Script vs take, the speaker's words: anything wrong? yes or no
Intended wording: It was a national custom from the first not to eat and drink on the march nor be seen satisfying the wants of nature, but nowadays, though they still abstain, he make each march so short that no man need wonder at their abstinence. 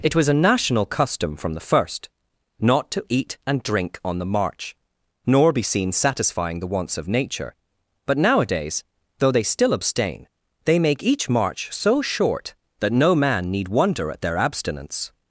yes